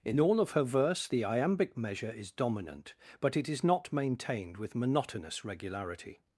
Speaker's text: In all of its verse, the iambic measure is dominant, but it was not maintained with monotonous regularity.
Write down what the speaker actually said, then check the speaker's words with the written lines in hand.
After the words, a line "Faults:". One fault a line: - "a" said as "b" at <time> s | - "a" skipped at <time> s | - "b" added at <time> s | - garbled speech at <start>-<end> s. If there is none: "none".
In all of her verse, the iambic measure is dominant, but it is not maintained with monotonous regularity.
Faults:
- "its" said as "her" at 0.5 s
- "was" said as "is" at 3.5 s